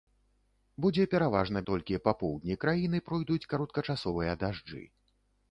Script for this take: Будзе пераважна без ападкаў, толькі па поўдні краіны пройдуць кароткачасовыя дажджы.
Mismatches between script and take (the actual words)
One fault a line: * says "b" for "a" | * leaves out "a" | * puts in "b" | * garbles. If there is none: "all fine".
* leaves out "без ападкаў"